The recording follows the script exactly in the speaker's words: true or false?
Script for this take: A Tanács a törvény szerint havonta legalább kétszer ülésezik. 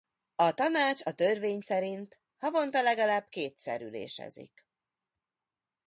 true